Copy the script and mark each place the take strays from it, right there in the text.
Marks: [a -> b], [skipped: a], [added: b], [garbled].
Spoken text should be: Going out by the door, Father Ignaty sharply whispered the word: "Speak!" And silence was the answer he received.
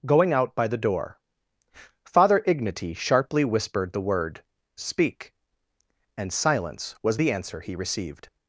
Going out by the door, Father Ignaty sharply whispered the word: "Speak!" And silence was the answer he received.